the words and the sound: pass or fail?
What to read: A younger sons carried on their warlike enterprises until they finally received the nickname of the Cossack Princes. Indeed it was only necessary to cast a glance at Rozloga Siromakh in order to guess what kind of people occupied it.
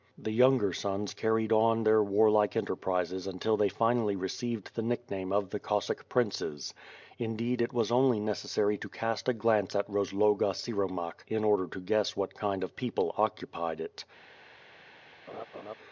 fail